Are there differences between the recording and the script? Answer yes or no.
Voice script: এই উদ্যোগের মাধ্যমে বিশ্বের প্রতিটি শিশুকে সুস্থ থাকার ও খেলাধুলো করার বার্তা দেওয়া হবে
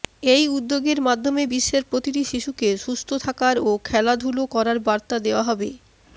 no